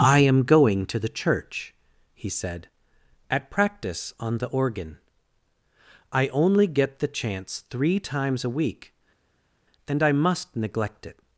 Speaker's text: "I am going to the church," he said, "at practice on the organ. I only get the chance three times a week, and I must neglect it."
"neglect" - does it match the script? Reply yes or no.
yes